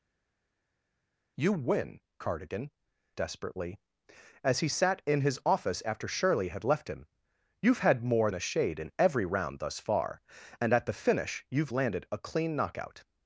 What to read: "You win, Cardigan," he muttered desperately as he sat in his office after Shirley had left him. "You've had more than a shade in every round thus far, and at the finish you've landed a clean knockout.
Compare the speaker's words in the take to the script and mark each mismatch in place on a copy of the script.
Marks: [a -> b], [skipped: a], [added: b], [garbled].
"You win, Cardigan," [skipped: he muttered] desperately as he sat in his office after Shirley had left him. "You've had more [skipped: than] a shade in every round thus far, and at the finish you've landed a clean knockout.